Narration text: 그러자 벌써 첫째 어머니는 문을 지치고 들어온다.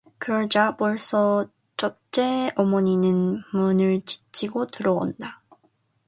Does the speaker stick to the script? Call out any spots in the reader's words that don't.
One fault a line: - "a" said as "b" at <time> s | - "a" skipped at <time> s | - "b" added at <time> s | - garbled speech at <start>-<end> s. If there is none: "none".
none